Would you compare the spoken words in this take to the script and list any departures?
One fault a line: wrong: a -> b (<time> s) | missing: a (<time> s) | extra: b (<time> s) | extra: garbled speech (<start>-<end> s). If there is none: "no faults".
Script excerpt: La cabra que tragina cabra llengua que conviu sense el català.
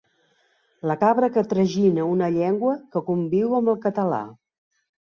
wrong: cabra -> una (2.1 s)
wrong: sense -> amb (3.6 s)